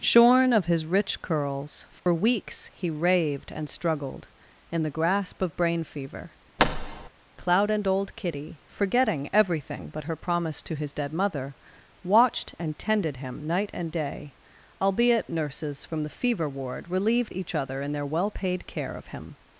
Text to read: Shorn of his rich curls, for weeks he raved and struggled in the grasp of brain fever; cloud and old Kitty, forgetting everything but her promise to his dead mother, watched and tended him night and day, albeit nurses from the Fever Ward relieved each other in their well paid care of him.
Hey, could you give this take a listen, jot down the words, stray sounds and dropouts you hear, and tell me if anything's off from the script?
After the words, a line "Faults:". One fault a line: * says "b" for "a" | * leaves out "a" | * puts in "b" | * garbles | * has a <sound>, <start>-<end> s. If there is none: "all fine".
Shorn of his rich curls, for weeks he raved and struggled in the grasp of brain fever; cloud and old Kitty, forgetting everything but her promise to his dead mother, watched and tended him night and day, albeit nurses from the Fever Ward relieved each other in their well paid care of him.
Faults:
* has a dropout, 2.0-2.1 s
* has a thud, 6.6-7.1 s